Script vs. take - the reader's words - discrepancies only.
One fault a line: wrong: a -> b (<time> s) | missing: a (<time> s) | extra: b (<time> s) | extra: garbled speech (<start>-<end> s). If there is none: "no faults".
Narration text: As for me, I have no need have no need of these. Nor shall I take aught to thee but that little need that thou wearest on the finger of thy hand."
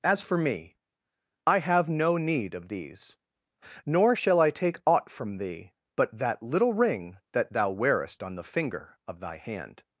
missing: have no need (2.5 s)
wrong: to -> from (5.1 s)
wrong: need -> ring (6.7 s)